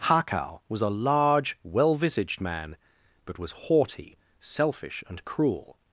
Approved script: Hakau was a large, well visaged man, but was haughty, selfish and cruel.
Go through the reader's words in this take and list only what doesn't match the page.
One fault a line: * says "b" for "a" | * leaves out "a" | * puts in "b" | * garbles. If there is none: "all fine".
all fine